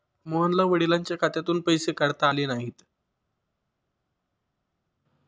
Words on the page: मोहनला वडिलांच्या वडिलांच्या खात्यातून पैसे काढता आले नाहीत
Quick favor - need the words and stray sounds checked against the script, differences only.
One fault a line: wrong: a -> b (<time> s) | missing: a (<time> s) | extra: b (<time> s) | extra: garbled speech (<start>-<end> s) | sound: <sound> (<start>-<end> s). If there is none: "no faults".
missing: वडिलांच्या (1.2 s)